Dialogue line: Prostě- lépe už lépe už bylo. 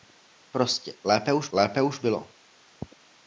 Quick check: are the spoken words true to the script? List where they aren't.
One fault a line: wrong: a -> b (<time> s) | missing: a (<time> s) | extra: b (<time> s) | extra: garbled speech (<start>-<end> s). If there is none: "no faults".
no faults